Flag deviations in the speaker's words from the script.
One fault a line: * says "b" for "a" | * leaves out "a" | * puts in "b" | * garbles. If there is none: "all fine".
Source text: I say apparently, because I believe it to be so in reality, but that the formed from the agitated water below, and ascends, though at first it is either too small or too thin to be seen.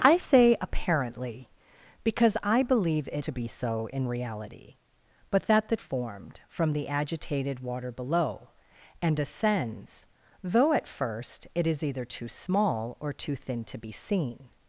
all fine